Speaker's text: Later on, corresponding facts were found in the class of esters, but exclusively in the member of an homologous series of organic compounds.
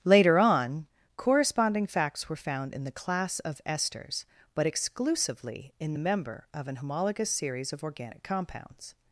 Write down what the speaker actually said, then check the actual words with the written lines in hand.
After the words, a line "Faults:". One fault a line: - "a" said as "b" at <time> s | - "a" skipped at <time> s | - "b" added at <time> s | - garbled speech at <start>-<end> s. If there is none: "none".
Later on, corresponding facts were found in the class of esters, but exclusively in the member of an homologous series of organic compounds.
Faults:
none